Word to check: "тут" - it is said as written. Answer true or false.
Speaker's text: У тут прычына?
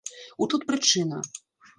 true